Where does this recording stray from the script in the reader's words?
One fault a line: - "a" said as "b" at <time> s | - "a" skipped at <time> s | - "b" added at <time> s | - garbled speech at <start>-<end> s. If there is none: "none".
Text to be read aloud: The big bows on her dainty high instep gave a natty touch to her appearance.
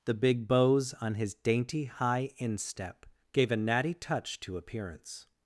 - "her" said as "his" at 1.1 s
- "her" skipped at 4.6 s